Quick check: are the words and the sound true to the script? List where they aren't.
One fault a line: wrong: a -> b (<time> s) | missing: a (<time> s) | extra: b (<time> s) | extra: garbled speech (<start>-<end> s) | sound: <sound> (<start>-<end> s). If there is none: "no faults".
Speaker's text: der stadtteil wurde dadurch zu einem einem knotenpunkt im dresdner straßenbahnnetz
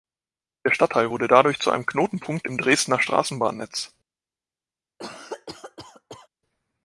missing: einem (1.8 s)
sound: cough (5.0-6.3 s)